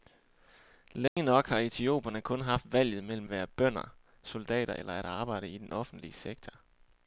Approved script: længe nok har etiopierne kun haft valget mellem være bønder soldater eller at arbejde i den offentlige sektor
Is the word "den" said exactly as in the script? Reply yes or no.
yes